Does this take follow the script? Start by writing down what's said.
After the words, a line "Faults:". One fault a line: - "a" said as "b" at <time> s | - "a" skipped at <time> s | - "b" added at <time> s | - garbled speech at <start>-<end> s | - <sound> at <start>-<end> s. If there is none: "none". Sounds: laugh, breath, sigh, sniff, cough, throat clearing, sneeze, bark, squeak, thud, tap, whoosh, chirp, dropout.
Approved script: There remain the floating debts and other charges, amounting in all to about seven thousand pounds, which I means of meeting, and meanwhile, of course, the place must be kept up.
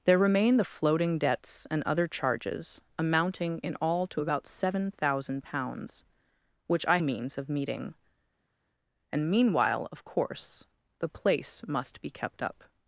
There remain the floating debts and other charges, amounting in all to about seven thousand pounds, which I means of meeting, and meanwhile, of course, the place must be kept up.
Faults:
none